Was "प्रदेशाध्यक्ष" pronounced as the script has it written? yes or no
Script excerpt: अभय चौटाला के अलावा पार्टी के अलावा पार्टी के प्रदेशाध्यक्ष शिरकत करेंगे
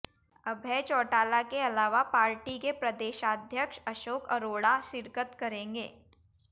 no